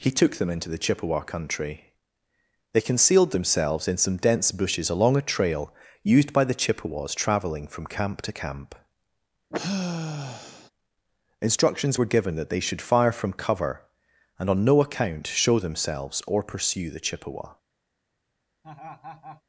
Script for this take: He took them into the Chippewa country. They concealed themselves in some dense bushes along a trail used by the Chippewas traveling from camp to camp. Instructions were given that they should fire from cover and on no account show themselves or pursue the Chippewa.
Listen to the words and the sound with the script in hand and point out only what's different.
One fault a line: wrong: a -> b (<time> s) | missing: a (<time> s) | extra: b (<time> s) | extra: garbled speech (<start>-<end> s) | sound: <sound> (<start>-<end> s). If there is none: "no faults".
sound: sigh (9.5-10.7 s)
sound: laugh (18.6-19.4 s)